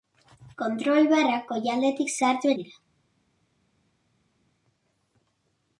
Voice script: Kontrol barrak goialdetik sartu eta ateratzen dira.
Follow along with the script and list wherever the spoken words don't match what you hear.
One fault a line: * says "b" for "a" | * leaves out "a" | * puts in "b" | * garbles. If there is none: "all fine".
* leaves out "eta ateratzen"